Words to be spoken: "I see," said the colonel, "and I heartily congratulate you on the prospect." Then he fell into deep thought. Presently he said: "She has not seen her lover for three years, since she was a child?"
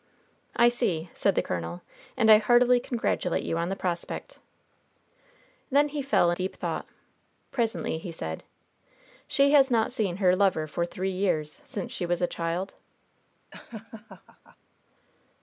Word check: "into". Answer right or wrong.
wrong